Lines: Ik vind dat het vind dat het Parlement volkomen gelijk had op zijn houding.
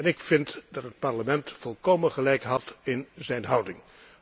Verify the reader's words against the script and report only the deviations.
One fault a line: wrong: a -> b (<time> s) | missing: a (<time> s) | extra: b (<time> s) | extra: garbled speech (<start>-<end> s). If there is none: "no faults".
missing: vind dat het (1.0 s)
wrong: op -> in (2.8 s)